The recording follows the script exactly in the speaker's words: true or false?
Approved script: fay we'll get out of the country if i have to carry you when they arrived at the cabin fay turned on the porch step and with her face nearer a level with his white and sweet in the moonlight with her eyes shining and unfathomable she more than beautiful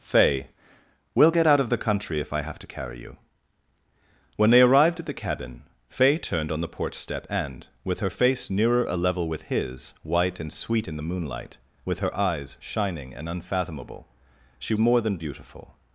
true